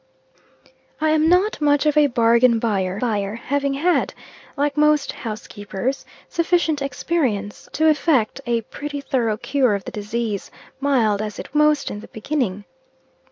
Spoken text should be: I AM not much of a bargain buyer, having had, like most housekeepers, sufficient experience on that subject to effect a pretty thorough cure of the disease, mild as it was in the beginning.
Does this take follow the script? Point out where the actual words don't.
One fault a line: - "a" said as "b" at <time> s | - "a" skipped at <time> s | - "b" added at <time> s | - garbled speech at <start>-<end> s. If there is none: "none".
- "buyer" added at 3.0 s
- "on that subject" skipped at 7.7 s
- "was" said as "most" at 11.5 s